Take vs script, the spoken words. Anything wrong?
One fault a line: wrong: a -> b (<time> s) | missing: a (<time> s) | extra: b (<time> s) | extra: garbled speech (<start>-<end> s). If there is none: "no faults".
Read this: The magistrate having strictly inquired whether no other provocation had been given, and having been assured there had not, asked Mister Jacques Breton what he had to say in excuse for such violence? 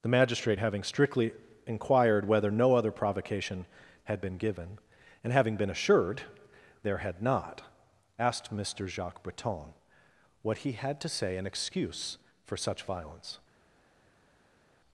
no faults